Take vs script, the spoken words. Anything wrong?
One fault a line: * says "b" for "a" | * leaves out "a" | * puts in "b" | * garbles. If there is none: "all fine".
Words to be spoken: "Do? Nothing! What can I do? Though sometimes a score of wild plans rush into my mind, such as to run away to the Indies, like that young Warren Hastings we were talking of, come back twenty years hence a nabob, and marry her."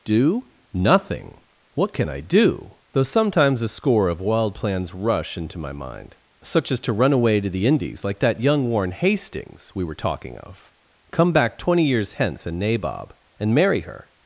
all fine